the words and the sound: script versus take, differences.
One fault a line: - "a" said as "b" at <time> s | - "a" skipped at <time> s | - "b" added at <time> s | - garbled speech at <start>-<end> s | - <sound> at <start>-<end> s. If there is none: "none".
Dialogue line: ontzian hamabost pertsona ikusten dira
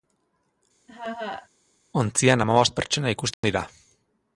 - laugh at 0.9-1.5 s
- dropout at 3.3-3.4 s